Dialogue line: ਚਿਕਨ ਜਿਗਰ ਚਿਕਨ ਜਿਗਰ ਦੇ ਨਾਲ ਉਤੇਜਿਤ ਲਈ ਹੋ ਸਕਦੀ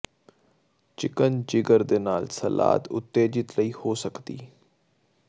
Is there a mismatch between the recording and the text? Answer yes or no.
yes